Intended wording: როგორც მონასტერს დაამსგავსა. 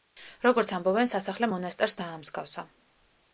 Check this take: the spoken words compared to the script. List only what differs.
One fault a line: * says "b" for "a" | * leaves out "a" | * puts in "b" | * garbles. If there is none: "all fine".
* puts in "ამბობენ სასახლე"